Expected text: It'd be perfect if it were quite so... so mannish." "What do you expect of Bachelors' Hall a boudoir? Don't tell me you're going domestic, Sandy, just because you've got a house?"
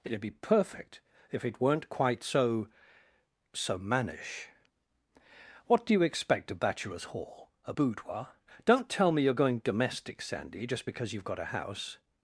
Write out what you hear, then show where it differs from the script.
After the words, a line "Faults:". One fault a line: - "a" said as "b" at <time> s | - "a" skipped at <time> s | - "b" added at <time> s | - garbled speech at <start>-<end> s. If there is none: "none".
It'd be perfect if it weren't quite so... so mannish." "What do you expect of Bachelors' Hall a boudoir? Don't tell me you're going domestic, Sandy, just because you've got a house?"
Faults:
- "were" said as "weren't" at 1.6 s